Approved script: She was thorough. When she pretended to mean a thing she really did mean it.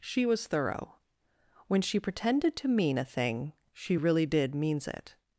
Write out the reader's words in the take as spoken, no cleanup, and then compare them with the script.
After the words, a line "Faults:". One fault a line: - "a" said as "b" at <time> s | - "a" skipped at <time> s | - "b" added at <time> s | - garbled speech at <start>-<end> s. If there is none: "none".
She was thorough. When she pretended to mean a thing she really did means it.
Faults:
- "mean" said as "means" at 4.6 s